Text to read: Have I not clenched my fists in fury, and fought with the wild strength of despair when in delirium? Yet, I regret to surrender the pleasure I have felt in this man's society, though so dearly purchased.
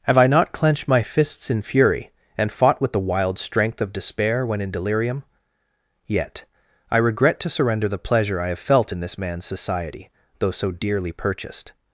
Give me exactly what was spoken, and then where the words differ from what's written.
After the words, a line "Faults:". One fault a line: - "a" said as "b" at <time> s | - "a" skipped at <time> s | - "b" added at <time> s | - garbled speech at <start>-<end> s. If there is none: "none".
Have I not clenched my fists in fury, and fought with the wild strength of despair when in delirium? Yet, I regret to surrender the pleasure I have felt in this man's society, though so dearly purchased.
Faults:
none